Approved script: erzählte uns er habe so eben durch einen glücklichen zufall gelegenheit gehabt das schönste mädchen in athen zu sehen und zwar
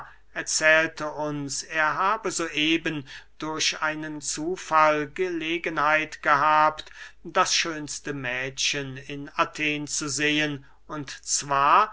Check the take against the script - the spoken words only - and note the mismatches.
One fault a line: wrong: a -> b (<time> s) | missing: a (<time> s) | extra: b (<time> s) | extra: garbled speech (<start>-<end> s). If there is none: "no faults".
missing: glücklichen (4.2 s)